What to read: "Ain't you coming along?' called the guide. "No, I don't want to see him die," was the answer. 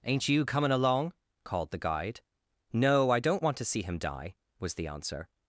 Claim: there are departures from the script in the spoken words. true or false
false